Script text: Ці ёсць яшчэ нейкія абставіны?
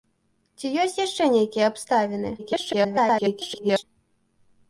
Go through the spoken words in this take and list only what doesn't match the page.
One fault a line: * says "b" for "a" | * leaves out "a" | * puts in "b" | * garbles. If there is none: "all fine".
* garbles